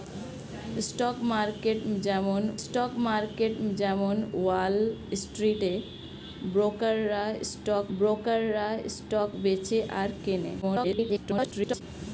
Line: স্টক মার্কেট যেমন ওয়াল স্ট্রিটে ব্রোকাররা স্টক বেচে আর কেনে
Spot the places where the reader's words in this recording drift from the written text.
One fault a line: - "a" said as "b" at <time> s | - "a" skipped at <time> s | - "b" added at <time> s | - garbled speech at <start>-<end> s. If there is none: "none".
- "স্টক মার্কেট যেমন" added at 2.6 s
- "ব্রোকাররা স্টক" added at 8.0 s
- garbled speech at 10.6-11.8 s